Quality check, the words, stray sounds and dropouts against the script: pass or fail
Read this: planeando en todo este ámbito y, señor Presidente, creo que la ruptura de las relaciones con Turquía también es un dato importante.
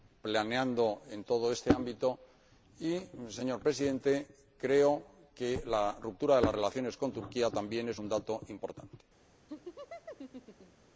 fail